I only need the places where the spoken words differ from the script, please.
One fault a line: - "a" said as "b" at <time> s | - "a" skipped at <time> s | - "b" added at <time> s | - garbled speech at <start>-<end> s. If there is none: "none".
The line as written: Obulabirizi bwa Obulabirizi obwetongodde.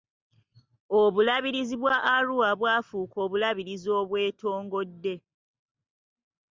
- "Arua bwafuuka" added at 2.1 s